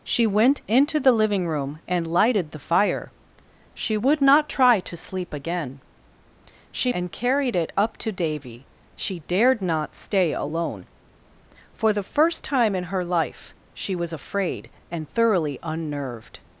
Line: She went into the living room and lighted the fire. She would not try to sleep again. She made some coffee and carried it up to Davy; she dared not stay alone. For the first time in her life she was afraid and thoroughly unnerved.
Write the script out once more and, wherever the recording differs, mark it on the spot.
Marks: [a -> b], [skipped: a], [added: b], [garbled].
She went into the living room and lighted the fire. She would not try to sleep again. She [skipped: made some coffee] and carried it up to Davy; she dared not stay alone. For the first time in her life she was afraid and thoroughly unnerved.